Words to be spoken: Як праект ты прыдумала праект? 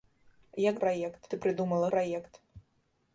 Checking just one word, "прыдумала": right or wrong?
right